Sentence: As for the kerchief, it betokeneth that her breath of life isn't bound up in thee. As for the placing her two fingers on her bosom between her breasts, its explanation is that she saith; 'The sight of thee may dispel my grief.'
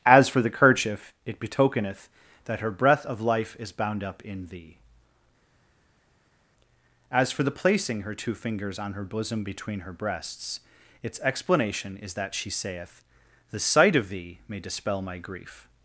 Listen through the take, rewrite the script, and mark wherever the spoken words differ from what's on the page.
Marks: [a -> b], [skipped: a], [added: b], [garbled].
As for the kerchief, it betokeneth that her breath of life [isn't -> is] bound up in thee. As for the placing her two fingers on her bosom between her breasts, its explanation is that she saith; 'The sight of thee may dispel my grief.'